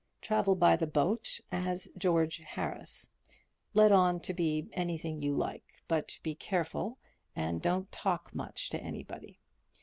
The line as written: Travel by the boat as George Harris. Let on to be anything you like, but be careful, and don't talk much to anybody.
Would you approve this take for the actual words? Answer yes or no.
yes